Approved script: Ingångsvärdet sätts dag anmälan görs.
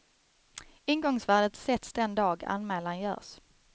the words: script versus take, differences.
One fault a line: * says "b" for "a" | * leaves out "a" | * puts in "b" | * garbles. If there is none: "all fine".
* puts in "den"